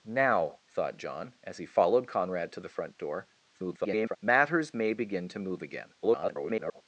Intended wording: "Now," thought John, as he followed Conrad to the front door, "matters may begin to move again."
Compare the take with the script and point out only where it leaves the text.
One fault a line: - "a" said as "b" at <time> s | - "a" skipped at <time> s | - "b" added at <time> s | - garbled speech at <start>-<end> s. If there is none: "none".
- garbled speech at 3.5-4.2 s
- garbled speech at 6.0-6.8 s